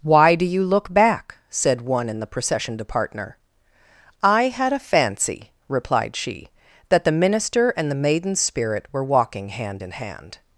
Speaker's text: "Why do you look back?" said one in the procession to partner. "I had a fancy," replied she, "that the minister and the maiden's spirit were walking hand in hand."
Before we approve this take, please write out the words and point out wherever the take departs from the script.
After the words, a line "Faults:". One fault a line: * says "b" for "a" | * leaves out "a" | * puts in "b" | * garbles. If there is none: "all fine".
"Why do you look back?" said one in the procession to partner. "I had a fancy," replied she, "that the minister and the maiden's spirit were walking hand in hand."
Faults:
all fine